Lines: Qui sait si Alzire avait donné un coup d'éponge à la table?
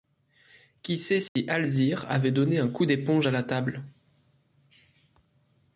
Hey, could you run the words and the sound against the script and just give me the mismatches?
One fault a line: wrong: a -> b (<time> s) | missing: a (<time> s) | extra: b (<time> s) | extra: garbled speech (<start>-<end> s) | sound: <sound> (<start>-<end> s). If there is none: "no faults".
sound: dropout (1.3-1.4 s)